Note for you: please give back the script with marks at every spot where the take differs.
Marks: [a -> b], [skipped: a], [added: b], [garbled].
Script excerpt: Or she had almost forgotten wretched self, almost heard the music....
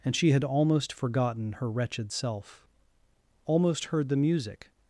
[Or -> And] she had almost forgotten [added: her] wretched self, almost heard the music....